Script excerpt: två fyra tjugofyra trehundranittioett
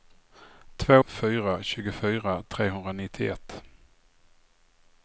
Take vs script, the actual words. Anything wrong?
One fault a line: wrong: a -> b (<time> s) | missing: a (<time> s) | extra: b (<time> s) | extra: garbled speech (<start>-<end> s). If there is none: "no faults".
no faults